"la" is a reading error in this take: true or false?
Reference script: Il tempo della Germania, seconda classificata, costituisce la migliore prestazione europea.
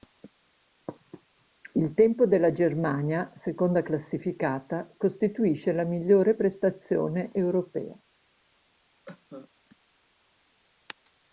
false